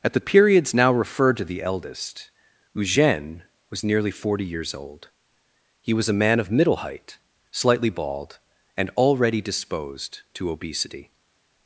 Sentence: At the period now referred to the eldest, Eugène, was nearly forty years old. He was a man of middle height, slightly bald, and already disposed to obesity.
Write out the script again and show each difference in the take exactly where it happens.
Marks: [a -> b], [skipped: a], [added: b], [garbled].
At the [period -> periods] now referred to the eldest, Eugène, was nearly forty years old. He was a man of middle height, slightly bald, and already disposed to obesity.